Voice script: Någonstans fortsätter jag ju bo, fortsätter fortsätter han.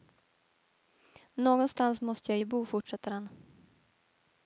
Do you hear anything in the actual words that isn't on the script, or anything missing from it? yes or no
yes